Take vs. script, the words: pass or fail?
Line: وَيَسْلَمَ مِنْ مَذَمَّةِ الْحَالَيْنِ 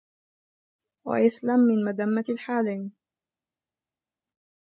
pass